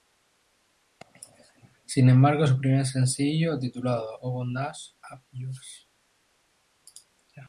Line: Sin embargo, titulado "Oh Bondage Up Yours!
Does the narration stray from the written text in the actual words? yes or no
yes